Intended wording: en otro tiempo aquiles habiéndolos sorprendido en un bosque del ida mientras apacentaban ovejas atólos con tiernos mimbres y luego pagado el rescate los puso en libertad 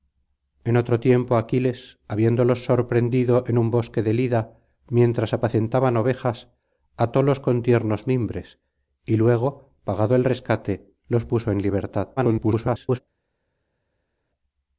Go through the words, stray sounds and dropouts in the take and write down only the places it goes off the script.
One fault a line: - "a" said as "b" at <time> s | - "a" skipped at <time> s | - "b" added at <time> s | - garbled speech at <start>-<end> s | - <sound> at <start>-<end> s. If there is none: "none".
- garbled speech at 12.2-13.0 s